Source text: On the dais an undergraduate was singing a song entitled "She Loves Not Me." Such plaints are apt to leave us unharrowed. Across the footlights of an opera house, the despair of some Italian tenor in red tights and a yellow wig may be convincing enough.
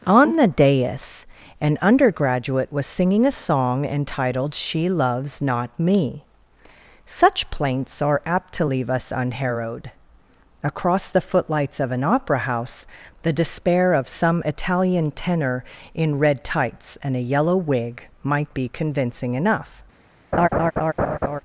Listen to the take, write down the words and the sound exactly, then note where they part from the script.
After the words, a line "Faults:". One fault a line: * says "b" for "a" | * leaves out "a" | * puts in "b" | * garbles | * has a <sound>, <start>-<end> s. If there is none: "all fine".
On the dais an undergraduate was singing a song entitled "She Loves Not Me." Such plaints are apt to leave us unharrowed. Across the footlights of an opera house, the despair of some Italian tenor in red tights and a yellow wig might be convincing enough.
Faults:
* says "might" for "may"
* has a laugh, 20.3-21.4 s